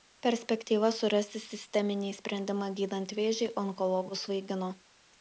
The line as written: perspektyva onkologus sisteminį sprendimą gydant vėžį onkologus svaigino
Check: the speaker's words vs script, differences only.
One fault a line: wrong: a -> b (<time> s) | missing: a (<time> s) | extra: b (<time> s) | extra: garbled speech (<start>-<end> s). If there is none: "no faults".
wrong: onkologus -> surasti (1.0 s)